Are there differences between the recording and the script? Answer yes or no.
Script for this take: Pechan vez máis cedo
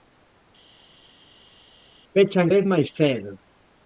no